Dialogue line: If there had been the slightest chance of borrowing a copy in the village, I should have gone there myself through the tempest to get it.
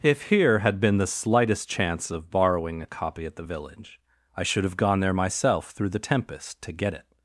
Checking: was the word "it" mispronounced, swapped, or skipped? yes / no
no